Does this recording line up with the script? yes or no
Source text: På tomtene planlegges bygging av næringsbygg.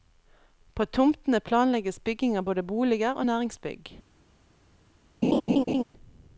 no